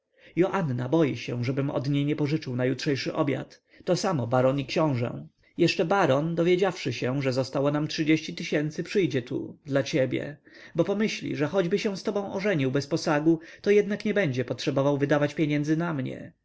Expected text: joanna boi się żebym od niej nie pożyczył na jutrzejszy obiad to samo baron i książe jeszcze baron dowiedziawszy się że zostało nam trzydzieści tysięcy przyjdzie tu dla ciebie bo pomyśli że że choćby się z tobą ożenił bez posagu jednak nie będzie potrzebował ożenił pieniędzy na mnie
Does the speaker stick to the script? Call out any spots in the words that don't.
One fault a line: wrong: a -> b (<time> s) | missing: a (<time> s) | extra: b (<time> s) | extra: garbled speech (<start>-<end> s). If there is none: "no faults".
missing: że (11.5 s)
extra: to (13.6 s)
wrong: ożenił -> wydawać (15.0 s)